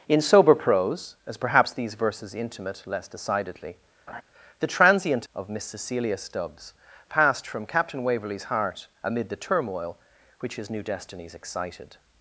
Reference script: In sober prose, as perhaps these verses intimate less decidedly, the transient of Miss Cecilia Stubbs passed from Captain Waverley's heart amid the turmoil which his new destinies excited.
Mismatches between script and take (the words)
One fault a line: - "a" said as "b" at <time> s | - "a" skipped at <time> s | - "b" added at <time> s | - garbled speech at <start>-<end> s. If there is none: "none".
none